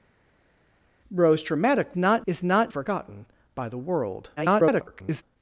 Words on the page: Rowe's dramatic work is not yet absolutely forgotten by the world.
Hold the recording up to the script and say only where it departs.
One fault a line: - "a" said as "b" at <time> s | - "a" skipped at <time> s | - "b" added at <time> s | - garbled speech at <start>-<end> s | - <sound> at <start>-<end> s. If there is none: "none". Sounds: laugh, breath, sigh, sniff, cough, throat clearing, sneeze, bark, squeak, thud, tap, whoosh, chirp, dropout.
- "work" said as "not" at 2.0 s
- "yet absolutely" skipped at 2.7 s
- garbled speech at 4.4-5.2 s